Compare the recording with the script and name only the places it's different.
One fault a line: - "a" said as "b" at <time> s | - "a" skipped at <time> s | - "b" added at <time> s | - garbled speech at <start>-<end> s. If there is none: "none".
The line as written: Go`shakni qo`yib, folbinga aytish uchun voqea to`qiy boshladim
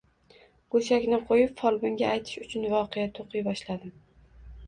none